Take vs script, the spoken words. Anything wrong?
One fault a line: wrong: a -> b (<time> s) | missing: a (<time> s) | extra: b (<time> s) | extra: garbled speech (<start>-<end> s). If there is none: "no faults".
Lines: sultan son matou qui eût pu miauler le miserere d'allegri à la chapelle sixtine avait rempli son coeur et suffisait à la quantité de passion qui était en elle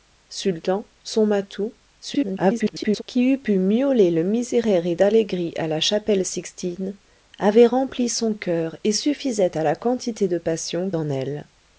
extra: garbled speech (2.0-3.0 s)
missing: qui était (10.9 s)